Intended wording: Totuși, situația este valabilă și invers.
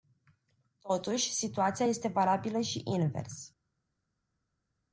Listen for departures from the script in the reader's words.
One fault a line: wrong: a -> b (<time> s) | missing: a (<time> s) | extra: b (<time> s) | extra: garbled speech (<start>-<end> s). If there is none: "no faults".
no faults